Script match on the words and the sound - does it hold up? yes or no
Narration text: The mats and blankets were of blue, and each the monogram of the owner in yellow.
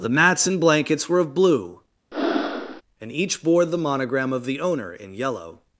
no